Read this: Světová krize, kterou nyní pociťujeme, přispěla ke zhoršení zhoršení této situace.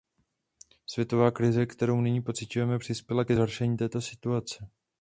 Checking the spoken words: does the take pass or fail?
fail